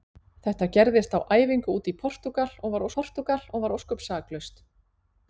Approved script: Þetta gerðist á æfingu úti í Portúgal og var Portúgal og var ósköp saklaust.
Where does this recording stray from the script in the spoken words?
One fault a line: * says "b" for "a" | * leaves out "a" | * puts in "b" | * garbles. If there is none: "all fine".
all fine